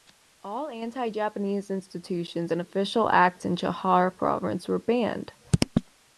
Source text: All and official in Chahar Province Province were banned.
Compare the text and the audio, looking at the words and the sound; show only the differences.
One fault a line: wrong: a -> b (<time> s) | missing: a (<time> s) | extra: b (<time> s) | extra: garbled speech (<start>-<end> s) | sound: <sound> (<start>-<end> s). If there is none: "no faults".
extra: anti Japanese institutions (0.7 s)
extra: acts (3.1 s)
missing: Province (4.7 s)